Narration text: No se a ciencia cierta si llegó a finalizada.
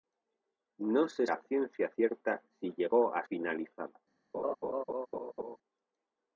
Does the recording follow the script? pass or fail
pass